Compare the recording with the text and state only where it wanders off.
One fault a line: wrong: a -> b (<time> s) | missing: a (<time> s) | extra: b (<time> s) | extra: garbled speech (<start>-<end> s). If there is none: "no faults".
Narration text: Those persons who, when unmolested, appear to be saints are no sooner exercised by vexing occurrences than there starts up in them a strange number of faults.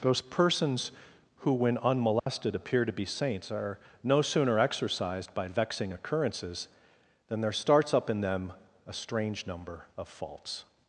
no faults